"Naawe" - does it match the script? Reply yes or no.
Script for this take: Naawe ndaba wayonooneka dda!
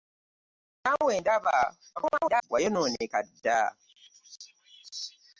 yes